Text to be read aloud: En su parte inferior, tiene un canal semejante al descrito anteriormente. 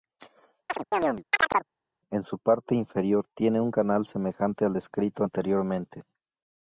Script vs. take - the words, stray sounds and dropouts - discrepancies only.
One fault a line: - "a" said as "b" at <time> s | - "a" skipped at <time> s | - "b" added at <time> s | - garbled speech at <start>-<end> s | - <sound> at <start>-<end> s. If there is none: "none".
- chirp at 0.7-1.7 s